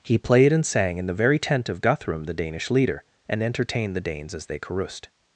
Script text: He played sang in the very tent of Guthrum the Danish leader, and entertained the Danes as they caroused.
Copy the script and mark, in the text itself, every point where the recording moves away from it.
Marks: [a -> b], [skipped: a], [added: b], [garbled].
He played [added: and] sang in the very tent of Guthrum the Danish leader, and entertained the Danes as they caroused.